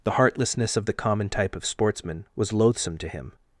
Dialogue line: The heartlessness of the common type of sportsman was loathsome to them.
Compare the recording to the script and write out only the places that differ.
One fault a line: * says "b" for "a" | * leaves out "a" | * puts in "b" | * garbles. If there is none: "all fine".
* says "him" for "them"